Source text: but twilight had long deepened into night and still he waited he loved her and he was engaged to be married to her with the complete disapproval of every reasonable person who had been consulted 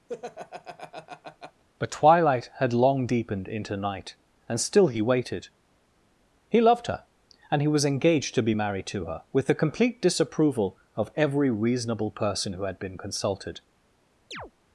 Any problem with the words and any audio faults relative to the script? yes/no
yes